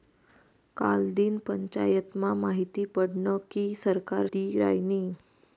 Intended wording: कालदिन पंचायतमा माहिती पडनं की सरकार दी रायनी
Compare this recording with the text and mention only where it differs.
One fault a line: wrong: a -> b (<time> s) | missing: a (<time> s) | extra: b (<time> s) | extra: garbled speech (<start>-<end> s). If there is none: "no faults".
no faults